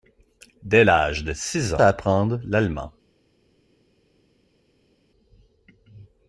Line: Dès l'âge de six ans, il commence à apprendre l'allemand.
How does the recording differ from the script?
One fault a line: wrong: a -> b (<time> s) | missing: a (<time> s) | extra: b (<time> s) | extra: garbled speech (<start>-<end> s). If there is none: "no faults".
missing: ans il commence (1.8 s)